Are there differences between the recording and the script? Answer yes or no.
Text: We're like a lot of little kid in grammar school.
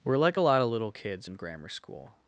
yes